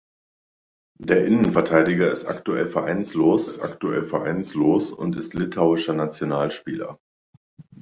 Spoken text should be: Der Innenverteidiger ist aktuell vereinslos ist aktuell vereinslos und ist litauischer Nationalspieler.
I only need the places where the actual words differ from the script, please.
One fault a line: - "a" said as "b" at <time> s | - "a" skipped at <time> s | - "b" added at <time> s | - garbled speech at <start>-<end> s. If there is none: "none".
none